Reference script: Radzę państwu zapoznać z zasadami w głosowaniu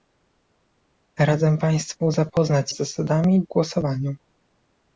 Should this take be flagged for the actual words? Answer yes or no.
no